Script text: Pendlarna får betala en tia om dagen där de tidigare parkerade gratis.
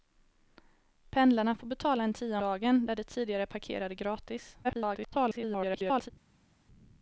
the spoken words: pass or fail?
fail